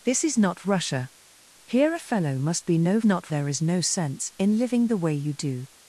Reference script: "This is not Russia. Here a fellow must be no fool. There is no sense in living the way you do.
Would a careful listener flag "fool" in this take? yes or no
yes